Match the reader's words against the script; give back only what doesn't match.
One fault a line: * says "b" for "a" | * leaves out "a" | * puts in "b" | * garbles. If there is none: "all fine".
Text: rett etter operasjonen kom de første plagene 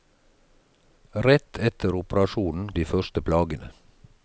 * leaves out "kom"